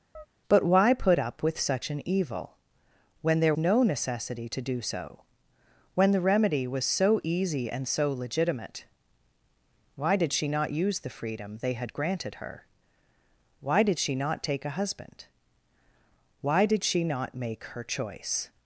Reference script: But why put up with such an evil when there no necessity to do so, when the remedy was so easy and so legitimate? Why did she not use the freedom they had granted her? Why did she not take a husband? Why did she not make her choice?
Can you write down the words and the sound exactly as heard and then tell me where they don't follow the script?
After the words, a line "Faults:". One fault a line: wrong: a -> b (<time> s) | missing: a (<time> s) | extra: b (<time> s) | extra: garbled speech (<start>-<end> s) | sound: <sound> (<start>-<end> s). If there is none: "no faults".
But why put up with such an evil when there no necessity to do so, when the remedy was so easy and so legitimate? Why did she not use the freedom they had granted her? Why did she not take a husband? Why did she not make her choice?
Faults:
sound: chirp (0.1-0.3 s)